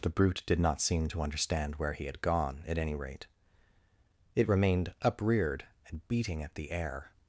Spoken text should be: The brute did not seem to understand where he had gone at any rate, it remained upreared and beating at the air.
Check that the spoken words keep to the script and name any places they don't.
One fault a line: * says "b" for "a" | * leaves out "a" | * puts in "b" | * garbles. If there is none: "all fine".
all fine